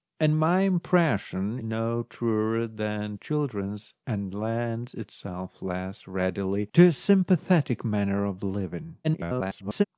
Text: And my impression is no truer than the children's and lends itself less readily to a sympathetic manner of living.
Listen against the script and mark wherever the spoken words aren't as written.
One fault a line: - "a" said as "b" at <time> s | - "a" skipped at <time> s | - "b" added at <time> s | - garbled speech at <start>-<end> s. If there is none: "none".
- "is" skipped at 1.6 s
- "the" skipped at 3.1 s
- garbled speech at 9.0-9.8 s